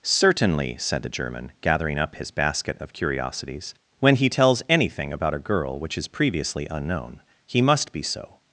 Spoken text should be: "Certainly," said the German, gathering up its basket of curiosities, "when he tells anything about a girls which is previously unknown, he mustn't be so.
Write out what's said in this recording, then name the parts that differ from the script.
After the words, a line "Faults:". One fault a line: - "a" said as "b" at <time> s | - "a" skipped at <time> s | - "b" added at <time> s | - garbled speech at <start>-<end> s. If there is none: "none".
"Certainly," said the German, gathering up his basket of curiosities, "when he tells anything about a girl which is previously unknown, he must be so.
Faults:
- "its" said as "his" at 2.1 s
- "girls" said as "girl" at 5.4 s
- "mustn't" said as "must" at 7.6 s